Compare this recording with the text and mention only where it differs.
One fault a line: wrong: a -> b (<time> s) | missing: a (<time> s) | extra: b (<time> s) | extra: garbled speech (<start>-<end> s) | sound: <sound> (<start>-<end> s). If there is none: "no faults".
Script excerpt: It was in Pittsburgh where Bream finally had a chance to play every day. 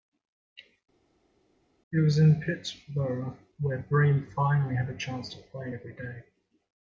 no faults